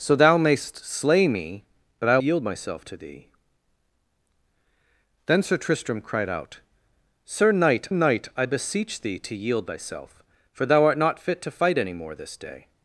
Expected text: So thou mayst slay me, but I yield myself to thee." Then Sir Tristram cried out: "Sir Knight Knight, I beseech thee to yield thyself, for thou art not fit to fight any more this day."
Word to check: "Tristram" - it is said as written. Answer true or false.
true